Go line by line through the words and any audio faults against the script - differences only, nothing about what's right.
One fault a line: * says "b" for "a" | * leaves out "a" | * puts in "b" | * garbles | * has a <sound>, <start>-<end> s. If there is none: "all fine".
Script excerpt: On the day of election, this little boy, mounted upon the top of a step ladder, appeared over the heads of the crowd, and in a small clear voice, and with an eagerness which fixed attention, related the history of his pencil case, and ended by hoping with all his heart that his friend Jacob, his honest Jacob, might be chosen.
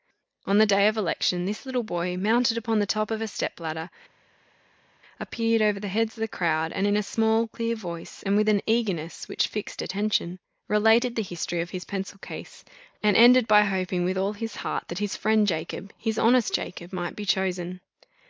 all fine